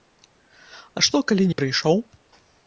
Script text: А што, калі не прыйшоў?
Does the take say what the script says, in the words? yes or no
yes